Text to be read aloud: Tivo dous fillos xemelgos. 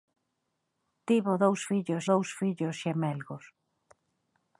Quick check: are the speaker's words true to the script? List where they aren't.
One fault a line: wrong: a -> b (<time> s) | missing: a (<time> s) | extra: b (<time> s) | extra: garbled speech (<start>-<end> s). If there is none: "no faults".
extra: dous fillos (2.1 s)